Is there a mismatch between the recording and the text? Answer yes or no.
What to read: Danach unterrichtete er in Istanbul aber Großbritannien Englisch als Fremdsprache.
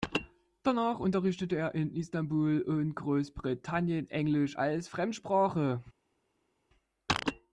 yes